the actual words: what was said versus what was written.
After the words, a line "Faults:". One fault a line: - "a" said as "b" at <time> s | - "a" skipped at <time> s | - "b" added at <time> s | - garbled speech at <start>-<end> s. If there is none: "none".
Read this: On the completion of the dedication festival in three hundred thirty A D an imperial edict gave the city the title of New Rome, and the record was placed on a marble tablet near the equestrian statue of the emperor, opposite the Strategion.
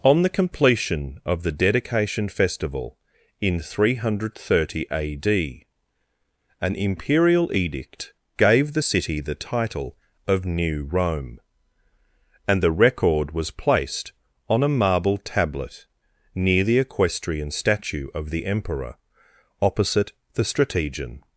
On the completion of the dedication festival in three hundred thirty A D an imperial edict gave the city the title of New Rome, and the record was placed on a marble tablet near the equestrian statue of the emperor, opposite the Strategion.
Faults:
none